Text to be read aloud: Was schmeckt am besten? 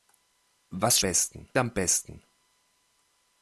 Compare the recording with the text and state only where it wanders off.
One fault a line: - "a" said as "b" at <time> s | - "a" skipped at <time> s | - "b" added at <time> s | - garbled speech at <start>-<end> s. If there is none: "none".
- "schmeckt" said as "besten" at 1.0 s